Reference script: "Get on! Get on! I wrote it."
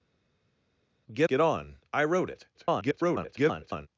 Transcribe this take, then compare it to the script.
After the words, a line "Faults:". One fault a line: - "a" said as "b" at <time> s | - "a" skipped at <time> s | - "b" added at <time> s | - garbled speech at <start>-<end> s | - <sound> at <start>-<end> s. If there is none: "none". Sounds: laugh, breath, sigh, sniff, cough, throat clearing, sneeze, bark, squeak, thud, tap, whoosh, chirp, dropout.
"Get! Get on! I wrote it." [garbled]
Faults:
- "on" skipped at 1.3 s
- garbled speech at 2.5-3.9 s